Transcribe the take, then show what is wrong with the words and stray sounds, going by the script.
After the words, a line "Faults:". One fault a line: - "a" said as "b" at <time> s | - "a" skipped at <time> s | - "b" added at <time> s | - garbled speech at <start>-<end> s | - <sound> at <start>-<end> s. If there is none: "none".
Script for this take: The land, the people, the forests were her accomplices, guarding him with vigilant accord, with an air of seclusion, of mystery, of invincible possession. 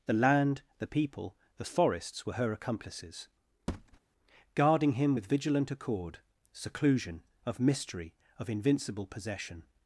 The land, the people, the forests were her accomplices, guarding him with vigilant accord, seclusion, of mystery, of invincible possession.
Faults:
- thud at 3.7-4.0 s
- "with an air of" skipped at 6.2 s